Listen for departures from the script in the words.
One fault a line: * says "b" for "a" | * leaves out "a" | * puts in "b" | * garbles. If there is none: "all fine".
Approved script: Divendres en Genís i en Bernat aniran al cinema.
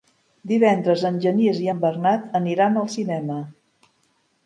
all fine